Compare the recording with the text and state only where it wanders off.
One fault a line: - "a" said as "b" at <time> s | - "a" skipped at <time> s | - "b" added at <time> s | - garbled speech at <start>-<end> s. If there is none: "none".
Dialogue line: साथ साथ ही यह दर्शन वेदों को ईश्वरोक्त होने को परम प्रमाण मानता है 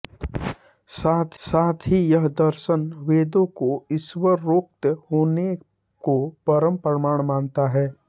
none